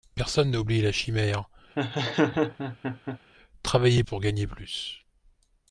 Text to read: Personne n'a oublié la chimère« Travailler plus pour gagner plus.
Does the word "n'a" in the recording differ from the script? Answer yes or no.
no